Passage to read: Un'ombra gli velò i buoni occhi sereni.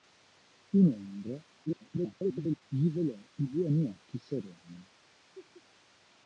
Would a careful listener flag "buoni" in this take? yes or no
no